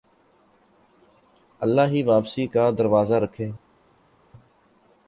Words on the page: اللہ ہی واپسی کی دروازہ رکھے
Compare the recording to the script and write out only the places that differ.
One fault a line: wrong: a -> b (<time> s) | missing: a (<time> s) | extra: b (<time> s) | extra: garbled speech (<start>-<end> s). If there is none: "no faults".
wrong: کی -> کا (2.5 s)